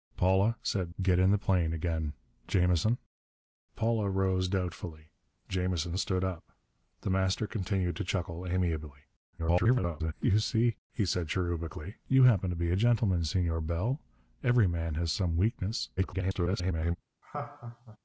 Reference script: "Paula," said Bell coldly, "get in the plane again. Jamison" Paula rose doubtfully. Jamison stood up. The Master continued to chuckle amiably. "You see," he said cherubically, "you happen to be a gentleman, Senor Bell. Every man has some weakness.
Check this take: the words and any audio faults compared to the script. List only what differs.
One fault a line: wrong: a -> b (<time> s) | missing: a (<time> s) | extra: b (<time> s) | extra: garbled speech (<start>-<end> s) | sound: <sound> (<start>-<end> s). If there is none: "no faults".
missing: Bell coldly (0.9 s)
extra: garbled speech (9.4-10.1 s)
extra: garbled speech (16.0-17.0 s)
sound: laugh (17.2-18.0 s)